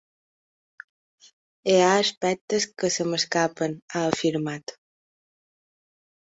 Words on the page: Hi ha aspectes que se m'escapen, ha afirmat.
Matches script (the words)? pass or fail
pass